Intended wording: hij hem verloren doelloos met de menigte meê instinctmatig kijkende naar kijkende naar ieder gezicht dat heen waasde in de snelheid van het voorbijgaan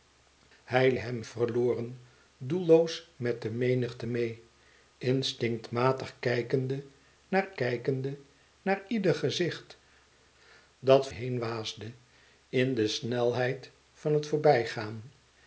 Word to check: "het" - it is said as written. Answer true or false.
true